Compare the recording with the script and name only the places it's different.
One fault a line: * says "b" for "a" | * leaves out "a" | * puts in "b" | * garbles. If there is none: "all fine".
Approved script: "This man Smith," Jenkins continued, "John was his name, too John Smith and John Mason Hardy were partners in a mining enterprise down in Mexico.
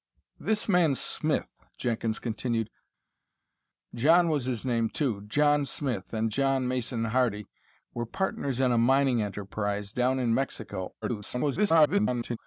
* garbles